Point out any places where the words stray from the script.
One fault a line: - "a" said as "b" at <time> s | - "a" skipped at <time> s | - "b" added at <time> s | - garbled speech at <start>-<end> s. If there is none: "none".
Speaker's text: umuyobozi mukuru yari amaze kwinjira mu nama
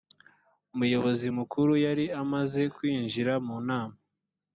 none